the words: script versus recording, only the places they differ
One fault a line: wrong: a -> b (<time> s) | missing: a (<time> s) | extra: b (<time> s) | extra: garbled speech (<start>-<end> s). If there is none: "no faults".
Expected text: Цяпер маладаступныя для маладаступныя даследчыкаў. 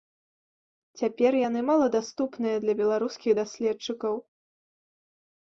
extra: яны (1.5 s)
wrong: маладаступныя -> беларускіх (2.8 s)